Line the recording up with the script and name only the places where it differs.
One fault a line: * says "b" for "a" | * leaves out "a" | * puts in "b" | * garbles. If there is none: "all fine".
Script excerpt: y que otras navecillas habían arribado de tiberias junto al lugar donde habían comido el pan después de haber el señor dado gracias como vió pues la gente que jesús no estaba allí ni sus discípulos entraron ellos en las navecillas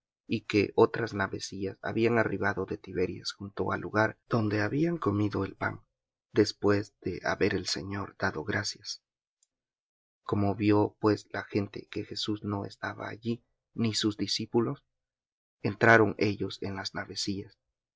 all fine